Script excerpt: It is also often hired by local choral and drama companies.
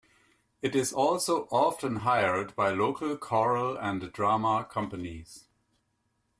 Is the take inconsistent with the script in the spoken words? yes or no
no